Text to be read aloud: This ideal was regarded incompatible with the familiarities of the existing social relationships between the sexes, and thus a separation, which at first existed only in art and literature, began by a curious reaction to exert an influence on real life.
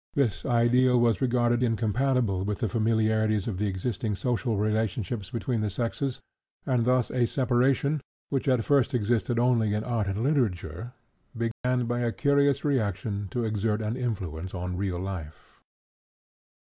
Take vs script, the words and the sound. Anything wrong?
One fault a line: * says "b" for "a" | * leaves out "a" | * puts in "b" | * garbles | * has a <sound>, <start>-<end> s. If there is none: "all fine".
* has a dropout, 11.5-11.6 s